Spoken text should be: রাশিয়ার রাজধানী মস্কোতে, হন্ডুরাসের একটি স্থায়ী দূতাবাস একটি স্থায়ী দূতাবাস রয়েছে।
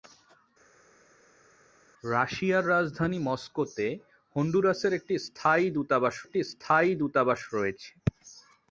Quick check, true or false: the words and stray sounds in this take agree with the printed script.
true